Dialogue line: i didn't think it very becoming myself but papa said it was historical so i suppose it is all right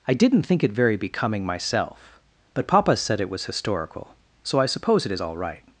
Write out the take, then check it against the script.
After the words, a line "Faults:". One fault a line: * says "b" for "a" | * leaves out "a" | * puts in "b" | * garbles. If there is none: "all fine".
i didn't think it very becoming myself but papa said it was historical so i suppose it is all right
Faults:
all fine